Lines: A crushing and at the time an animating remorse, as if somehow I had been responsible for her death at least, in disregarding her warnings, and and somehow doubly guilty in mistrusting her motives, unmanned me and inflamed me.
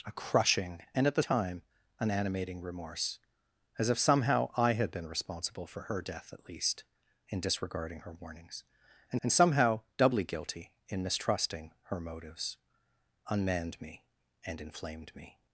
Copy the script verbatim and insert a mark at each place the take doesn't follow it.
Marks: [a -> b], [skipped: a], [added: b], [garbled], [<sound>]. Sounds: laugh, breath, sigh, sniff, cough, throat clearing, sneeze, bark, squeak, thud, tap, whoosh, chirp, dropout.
A crushing and at the time an animating remorse, as if somehow I had been responsible for her death at least, in disregarding her warnings, and and somehow doubly guilty in mistrusting her motives, unmanned me and inflamed me.